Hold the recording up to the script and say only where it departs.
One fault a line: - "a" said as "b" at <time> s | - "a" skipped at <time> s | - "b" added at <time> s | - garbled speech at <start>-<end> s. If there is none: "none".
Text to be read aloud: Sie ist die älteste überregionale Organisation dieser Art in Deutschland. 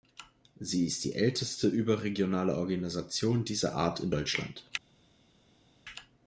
none